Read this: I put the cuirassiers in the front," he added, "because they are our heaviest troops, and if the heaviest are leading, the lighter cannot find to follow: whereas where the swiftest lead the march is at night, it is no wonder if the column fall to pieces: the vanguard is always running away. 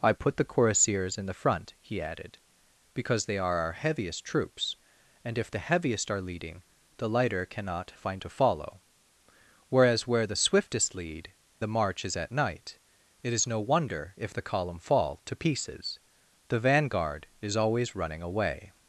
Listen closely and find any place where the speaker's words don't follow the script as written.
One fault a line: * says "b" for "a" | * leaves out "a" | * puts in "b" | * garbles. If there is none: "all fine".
all fine